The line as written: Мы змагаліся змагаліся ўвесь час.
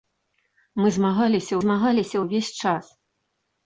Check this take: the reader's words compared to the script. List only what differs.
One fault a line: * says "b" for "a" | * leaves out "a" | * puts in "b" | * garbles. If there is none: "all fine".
all fine